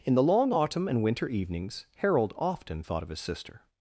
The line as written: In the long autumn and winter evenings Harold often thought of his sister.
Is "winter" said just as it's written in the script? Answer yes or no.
yes